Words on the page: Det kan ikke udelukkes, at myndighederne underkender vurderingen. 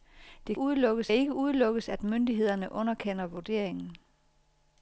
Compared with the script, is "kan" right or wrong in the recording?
wrong